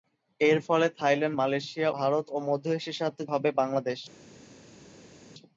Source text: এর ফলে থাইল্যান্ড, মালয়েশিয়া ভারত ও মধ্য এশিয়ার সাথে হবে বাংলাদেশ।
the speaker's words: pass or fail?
pass